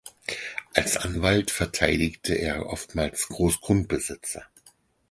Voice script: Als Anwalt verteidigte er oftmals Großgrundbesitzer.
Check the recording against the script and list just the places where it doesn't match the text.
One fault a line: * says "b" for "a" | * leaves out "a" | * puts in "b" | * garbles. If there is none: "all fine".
all fine